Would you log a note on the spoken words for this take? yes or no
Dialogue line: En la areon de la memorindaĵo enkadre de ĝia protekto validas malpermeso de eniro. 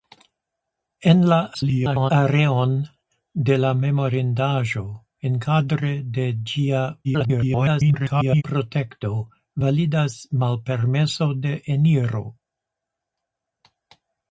yes